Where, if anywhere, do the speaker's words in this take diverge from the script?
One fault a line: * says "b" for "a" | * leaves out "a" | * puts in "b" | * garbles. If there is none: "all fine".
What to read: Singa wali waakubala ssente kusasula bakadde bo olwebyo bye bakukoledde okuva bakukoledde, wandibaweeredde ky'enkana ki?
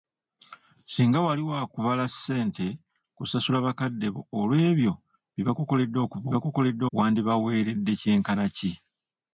all fine